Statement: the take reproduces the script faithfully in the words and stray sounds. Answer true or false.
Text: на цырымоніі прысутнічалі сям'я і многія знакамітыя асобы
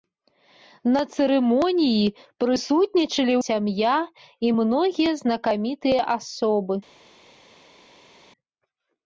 true